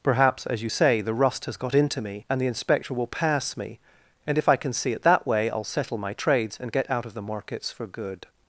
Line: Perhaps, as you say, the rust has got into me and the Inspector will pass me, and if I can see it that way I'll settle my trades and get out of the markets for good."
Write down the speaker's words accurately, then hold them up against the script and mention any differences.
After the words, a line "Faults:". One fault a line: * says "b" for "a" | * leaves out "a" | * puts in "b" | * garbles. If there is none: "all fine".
Perhaps, as you say, the rust has got into me and the Inspector will pass me, and if I can see it that way I'll settle my trades and get out of the markets for good."
Faults:
all fine